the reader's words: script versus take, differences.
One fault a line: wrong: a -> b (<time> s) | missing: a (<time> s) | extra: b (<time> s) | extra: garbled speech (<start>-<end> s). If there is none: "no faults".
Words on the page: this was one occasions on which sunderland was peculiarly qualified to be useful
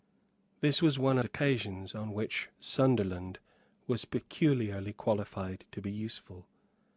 no faults